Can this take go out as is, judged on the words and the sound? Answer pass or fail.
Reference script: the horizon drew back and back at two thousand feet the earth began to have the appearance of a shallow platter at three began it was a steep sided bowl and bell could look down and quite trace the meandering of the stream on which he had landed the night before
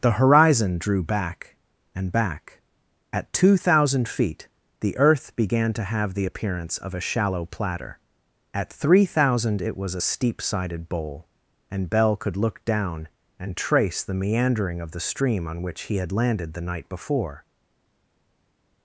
fail